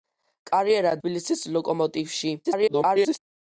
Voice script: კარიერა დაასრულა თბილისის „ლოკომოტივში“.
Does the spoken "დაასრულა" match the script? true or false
false